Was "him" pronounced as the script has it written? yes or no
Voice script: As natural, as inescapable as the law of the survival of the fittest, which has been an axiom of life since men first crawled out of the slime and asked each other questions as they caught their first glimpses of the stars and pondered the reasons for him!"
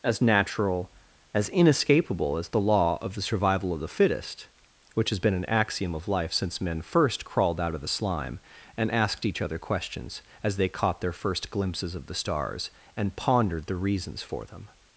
no